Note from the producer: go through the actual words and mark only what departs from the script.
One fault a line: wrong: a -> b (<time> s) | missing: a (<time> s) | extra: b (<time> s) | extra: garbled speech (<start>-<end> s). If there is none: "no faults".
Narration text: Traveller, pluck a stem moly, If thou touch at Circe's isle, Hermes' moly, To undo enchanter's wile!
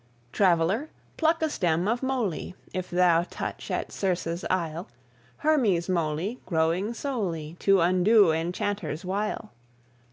extra: of (1.9 s)
extra: growing solely (6.5 s)